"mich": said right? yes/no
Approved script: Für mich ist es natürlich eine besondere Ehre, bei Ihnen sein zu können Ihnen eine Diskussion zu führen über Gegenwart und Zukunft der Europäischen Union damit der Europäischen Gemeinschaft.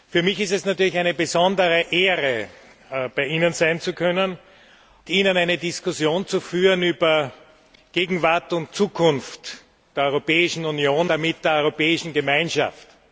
yes